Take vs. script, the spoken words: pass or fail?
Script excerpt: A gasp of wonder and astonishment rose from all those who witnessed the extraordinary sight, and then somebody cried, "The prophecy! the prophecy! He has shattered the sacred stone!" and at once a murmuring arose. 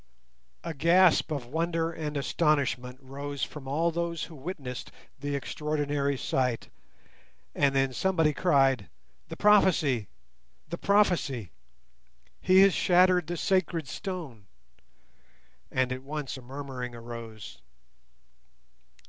pass